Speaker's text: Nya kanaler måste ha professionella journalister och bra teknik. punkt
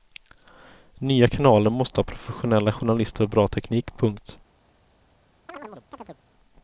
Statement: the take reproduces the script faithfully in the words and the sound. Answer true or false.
false